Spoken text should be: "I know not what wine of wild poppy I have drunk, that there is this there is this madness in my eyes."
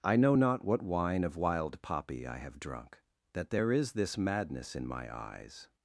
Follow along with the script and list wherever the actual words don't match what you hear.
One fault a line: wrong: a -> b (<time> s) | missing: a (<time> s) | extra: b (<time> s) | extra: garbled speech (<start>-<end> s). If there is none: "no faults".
missing: there is this (4.2 s)